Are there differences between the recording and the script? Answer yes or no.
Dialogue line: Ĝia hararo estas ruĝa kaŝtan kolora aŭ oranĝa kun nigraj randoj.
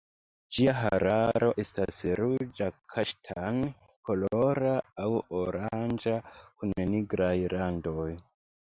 no